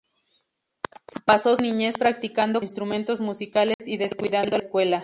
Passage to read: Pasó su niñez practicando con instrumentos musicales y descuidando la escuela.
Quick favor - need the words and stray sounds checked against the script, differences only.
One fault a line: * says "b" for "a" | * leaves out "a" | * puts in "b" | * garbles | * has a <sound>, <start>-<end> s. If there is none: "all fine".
* leaves out "su"
* leaves out "con"
* has a dropout, 3.7-3.8 s
* leaves out "la"